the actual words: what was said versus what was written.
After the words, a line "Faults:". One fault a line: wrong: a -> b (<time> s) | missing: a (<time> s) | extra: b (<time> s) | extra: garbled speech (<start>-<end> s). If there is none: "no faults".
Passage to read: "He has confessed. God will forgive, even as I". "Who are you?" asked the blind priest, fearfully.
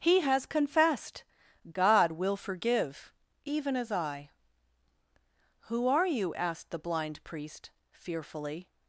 "He has confessed. God will forgive, even as I". "Who are you?" asked the blind priest, fearfully.
Faults:
no faults